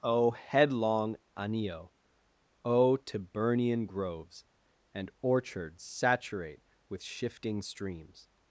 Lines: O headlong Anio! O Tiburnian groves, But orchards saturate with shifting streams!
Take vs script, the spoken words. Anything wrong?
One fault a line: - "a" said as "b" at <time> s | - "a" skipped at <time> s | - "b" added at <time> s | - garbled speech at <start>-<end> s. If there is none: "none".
- "But" said as "And" at 5.0 s